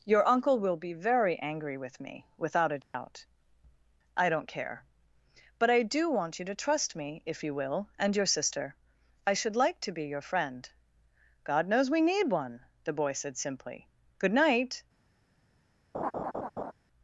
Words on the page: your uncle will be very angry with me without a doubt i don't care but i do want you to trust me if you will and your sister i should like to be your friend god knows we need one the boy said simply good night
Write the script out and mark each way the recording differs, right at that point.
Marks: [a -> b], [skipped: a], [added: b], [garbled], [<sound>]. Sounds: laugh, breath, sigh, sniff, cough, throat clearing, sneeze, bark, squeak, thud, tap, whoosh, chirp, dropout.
your uncle will be very angry with me without a doubt [dropout] i don't care but i do want you to trust me if you will and your sister i should like to be your friend god knows we need one the boy said simply good night [laugh]